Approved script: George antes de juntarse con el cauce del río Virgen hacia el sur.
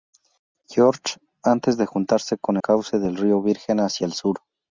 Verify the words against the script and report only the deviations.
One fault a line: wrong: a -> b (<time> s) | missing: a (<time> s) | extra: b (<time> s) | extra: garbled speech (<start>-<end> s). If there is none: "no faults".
missing: el (2.6 s)